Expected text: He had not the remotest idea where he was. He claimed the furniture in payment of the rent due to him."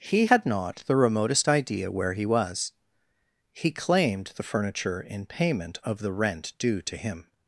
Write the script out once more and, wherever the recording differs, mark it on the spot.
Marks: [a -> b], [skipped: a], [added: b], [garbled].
He had not the remotest idea where he was. He claimed the furniture in payment of the rent due to him."